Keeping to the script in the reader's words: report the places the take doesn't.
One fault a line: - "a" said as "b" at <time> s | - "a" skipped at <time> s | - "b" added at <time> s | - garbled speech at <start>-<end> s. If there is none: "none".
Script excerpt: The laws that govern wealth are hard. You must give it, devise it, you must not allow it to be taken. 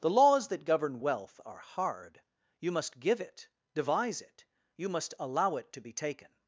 - "not" skipped at 5.1 s